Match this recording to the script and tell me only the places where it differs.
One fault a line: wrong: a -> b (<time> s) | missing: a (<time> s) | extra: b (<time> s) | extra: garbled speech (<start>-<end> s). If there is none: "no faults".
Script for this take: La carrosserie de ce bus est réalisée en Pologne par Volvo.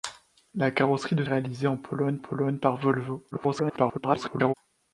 missing: ce bus est (1.2 s)
extra: Pologne (2.2 s)
extra: garbled speech (3.3-4.5 s)